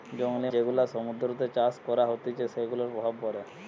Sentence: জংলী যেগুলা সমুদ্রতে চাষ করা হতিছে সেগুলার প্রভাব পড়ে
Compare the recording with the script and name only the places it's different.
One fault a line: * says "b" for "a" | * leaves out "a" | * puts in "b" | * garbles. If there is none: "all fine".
all fine